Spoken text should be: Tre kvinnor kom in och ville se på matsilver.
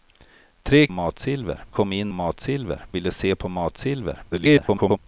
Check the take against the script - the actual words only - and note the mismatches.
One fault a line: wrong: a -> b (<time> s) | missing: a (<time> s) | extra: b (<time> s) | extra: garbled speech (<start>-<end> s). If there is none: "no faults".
wrong: kvinnor -> matsilver (0.9 s)
wrong: och -> matsilver (2.1 s)
extra: garbled speech (4.3-5.0 s)